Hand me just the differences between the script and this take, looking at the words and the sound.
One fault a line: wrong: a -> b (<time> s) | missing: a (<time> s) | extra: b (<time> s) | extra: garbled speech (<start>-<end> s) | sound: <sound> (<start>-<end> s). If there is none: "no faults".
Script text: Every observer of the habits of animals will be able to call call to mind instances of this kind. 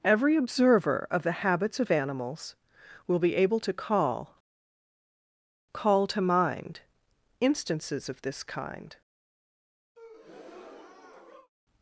sound: breath (9.9-11.5 s)